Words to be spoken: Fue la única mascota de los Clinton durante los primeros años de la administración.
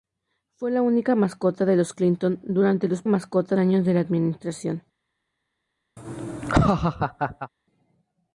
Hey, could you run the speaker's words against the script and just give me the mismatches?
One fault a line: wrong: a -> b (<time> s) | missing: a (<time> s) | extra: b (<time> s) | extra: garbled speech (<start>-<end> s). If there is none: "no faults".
wrong: primeros -> mascota (3.0 s)